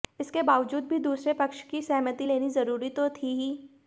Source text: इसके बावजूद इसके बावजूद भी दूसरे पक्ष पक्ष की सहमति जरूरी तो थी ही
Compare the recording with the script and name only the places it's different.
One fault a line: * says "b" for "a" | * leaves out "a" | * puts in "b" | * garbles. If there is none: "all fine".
* leaves out "इसके बावजूद"
* leaves out "पक्ष"
* puts in "लेनी"